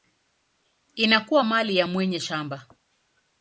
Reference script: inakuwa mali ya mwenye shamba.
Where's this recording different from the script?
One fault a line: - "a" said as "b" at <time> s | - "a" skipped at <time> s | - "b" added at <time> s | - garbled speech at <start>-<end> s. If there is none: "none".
none